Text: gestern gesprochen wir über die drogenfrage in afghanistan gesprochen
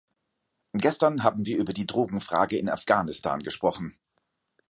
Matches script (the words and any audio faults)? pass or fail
fail